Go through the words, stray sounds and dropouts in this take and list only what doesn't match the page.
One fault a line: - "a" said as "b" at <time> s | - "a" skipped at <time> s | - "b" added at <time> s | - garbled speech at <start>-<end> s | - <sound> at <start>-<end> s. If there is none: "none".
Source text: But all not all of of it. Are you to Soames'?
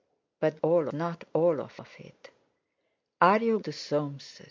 none